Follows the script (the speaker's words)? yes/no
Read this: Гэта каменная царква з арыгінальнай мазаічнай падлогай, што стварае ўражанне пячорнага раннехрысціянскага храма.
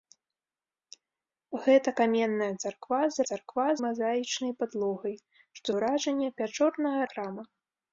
no